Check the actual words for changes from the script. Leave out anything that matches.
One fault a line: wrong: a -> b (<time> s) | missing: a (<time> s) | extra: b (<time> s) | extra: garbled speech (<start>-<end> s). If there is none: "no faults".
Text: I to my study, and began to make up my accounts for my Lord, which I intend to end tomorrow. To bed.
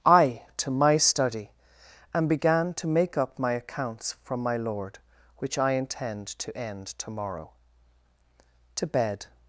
wrong: for -> from (4.2 s)